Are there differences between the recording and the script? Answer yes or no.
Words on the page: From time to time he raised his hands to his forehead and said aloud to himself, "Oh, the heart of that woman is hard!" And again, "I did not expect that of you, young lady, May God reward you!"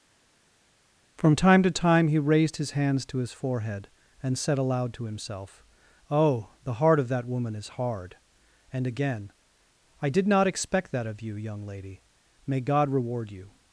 no